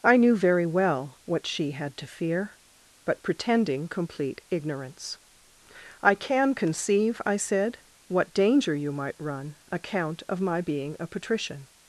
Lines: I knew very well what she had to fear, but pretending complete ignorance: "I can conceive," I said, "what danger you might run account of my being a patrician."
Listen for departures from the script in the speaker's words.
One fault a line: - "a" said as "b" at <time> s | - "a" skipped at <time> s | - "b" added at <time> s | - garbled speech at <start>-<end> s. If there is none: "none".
none